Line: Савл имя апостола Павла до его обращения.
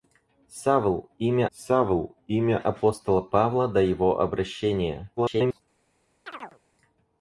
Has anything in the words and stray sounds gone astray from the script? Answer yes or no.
yes